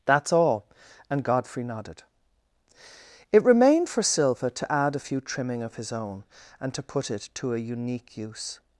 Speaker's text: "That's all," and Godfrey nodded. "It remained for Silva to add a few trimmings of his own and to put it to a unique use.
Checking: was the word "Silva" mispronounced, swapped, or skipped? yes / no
no